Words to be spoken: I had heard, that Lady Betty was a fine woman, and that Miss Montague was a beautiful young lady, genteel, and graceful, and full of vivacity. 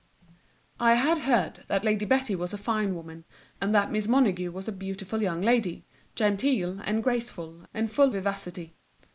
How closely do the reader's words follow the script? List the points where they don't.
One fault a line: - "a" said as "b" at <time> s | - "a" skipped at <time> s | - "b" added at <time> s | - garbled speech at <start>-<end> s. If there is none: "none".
- "of" skipped at 8.1 s